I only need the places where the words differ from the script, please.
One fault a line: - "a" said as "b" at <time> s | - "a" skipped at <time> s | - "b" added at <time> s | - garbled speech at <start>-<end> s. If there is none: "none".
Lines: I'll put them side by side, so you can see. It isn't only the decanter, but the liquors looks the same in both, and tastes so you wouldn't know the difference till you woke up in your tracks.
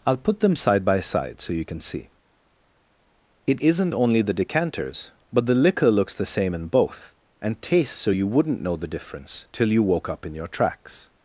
- "decanter" said as "decanters" at 4.3 s
- "liquors" said as "liquor" at 5.5 s